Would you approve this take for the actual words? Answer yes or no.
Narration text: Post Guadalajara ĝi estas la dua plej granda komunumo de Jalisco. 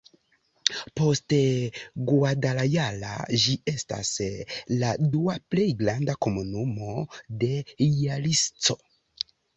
yes